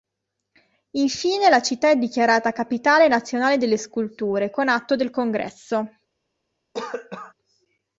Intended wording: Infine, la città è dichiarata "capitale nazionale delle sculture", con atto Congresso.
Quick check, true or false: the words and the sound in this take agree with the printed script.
false